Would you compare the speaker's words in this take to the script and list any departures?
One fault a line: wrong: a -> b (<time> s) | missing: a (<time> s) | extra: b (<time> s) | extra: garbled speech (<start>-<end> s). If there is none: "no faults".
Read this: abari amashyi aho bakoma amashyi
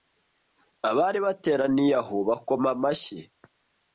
wrong: amashyi -> bateraniye (1.2 s)